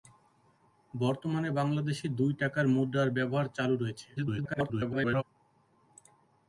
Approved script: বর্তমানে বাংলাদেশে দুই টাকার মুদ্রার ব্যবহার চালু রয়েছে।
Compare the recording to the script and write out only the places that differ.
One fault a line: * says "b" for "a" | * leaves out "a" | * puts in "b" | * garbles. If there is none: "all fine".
* garbles